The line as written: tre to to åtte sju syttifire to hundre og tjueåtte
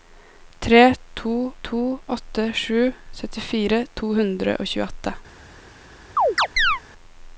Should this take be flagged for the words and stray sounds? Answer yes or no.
yes